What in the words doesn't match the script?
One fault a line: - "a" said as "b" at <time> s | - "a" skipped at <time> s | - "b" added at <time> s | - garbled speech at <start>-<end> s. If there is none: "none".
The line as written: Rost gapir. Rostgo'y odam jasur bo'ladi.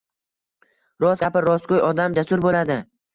none